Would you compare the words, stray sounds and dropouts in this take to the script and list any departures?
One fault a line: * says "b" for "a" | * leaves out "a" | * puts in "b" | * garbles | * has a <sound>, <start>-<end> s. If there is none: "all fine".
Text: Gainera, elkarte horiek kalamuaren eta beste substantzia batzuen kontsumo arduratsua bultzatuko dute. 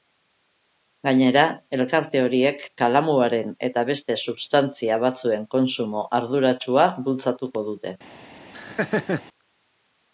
* has a laugh, 8.5-9.2 s